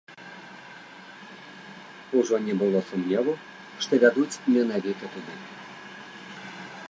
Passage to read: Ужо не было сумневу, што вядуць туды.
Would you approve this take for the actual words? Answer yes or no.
no